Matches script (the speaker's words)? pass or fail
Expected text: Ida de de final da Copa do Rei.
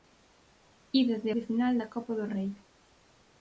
pass